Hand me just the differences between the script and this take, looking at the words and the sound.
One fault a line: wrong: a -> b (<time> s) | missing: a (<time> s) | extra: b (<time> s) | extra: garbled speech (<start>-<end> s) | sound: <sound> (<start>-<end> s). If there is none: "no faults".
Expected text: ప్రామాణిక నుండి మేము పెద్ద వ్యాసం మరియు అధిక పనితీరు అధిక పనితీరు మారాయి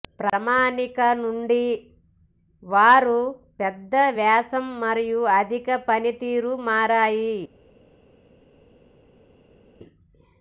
wrong: మేము -> వారు (2.6 s)
missing: అధిక పనితీరు (6.5 s)